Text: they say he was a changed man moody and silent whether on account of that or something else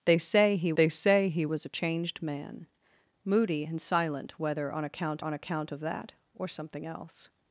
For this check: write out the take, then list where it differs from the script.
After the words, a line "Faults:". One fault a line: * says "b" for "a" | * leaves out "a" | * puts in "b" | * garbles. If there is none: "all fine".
they say he they say he was a changed man moody and silent whether on account on account of that or something else
Faults:
* puts in "they say he"
* puts in "on account"